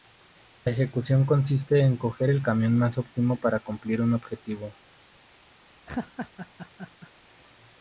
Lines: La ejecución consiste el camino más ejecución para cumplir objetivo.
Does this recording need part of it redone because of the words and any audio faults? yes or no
yes